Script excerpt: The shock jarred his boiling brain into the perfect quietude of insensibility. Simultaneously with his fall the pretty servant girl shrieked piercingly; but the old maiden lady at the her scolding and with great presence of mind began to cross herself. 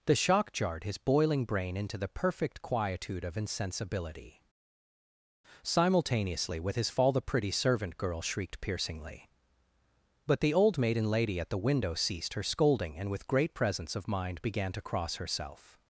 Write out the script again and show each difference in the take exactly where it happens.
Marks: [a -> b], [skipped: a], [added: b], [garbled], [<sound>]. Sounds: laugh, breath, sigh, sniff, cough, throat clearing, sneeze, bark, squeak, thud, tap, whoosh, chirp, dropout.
The shock jarred his boiling brain into the perfect quietude of insensibility. Simultaneously with his fall the pretty servant girl shrieked piercingly; but the old maiden lady at the [added: window ceased] her scolding and with great presence of mind began to cross herself.